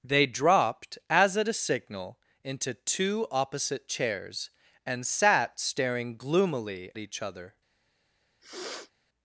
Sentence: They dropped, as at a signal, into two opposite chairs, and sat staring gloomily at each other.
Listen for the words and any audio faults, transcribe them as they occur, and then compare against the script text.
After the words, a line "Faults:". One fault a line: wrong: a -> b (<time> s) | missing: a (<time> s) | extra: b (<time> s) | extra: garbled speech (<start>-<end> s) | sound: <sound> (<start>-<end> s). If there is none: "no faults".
They dropped, as at a signal, into two opposite chairs, and sat staring gloomily each other.
Faults:
missing: at (6.9 s)
sound: sniff (8.4-8.9 s)